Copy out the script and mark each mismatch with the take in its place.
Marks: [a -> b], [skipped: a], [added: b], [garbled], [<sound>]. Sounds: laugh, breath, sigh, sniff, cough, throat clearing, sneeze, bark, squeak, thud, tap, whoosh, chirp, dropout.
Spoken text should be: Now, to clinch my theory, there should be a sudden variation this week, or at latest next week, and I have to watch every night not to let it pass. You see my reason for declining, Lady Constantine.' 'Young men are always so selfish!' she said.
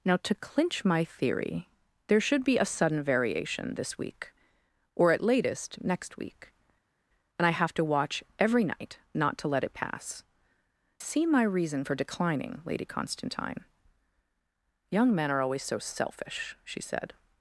Now, to clinch my theory, there should be a sudden variation this week, or at latest next week, and I have to watch every night not to let it pass. [skipped: You] see my reason for declining, Lady Constantine.' 'Young men are always so selfish!' she said.